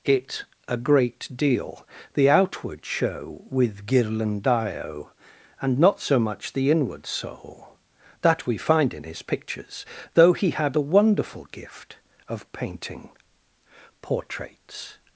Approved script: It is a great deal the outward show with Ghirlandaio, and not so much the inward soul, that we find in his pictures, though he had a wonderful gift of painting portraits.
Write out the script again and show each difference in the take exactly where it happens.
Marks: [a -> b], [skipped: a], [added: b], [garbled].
It [skipped: is] a great deal the outward show with Ghirlandaio, and not so much the inward soul, that we find in his pictures, though he had a wonderful gift of painting portraits.